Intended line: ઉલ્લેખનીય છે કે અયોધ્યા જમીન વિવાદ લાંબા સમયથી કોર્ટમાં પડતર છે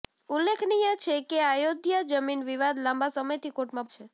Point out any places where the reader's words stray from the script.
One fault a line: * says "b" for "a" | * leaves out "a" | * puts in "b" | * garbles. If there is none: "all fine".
* leaves out "પડતર"